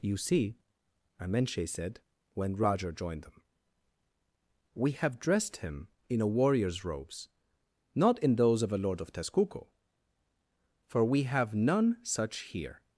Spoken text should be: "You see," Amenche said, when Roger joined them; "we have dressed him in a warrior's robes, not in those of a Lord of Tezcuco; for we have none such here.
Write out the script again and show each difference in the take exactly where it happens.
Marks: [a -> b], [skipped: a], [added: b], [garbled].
"You see," Amenche said, when Roger joined them; "we have dressed him in a warrior's robes, not in those of a Lord of Tezcuco; for we have none such here.